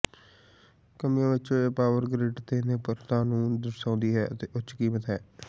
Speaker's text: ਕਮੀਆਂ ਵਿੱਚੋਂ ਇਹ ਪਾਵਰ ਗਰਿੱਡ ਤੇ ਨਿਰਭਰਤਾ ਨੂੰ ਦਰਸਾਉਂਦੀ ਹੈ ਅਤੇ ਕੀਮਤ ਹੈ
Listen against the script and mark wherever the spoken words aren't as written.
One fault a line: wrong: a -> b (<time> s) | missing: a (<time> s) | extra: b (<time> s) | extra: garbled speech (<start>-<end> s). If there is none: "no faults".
extra: ਉੱਚ (4.6 s)